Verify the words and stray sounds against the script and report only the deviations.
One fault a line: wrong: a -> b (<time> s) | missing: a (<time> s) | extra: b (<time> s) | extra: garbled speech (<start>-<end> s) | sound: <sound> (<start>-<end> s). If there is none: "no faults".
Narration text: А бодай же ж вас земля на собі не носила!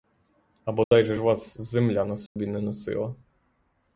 sound: dropout (0.8-0.9 s)
sound: dropout (2.3-2.4 s)